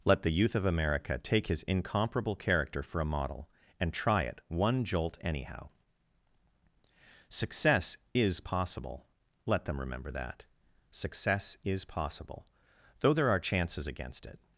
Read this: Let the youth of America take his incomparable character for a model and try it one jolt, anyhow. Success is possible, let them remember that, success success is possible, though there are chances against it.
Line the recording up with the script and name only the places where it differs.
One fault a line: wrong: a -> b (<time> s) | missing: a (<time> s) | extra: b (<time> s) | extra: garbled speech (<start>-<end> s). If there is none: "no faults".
missing: success (11.6 s)